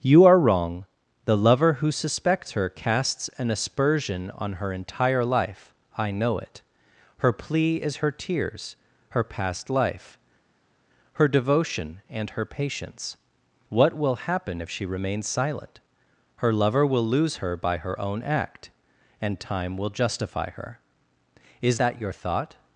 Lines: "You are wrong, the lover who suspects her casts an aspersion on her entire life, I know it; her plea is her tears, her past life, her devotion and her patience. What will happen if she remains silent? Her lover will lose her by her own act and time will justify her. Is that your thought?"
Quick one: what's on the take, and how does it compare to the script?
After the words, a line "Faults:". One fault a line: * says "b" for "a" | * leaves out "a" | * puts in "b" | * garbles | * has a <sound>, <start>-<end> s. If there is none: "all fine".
"You are wrong, the lover who suspects her casts an aspersion on her entire life, I know it; her plea is her tears, her past life, her devotion and her patience. What will happen if she remains silent? Her lover will lose her by her own act and time will justify her. Is that your thought?"
Faults:
all fine